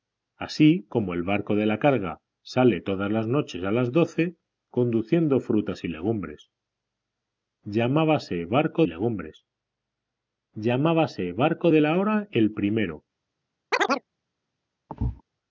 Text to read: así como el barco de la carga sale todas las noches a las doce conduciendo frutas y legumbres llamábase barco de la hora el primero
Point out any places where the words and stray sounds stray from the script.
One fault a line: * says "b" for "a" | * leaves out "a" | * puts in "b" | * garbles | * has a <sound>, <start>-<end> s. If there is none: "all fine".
* puts in "legumbres llamábase barco"
* has a chirp, 13.7-14.0 s
* has a thud, 14.9-15.2 s